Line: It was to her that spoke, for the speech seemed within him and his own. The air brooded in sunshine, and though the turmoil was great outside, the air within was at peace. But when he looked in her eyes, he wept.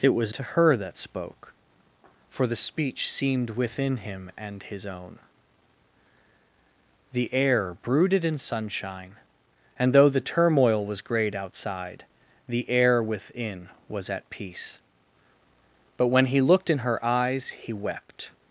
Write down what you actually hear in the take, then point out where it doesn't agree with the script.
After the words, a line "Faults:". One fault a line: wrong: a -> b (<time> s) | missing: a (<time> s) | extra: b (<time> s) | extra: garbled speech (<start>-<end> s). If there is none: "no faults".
It was to her that spoke, for the speech seemed within him and his own. The air brooded in sunshine, and though the turmoil was great outside, the air within was at peace. But when he looked in her eyes, he wept.
Faults:
no faults